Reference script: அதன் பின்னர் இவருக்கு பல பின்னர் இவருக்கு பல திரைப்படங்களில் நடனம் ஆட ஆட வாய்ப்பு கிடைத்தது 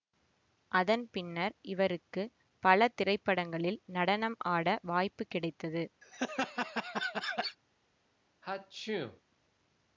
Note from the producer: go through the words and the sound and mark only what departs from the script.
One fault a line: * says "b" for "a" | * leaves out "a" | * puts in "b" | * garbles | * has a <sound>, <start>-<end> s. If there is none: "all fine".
* leaves out "பின்னர் இவருக்கு பல"
* leaves out "ஆட"
* has a laugh, 6.0-7.6 s
* has a sneeze, 8.4-9.2 s